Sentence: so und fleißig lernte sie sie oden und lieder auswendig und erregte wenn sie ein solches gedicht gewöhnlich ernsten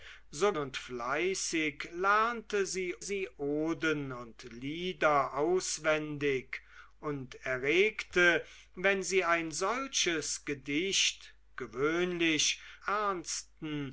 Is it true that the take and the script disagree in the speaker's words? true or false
false